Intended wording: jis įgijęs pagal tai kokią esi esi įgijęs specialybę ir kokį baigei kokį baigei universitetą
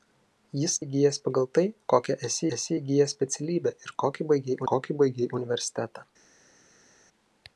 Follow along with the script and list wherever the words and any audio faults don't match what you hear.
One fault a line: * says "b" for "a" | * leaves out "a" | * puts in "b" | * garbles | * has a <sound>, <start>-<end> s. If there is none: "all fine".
all fine